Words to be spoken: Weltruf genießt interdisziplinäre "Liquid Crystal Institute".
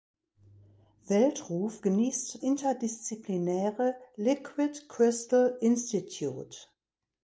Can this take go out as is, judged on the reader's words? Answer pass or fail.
pass